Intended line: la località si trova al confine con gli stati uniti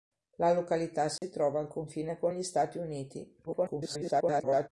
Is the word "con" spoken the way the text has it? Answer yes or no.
yes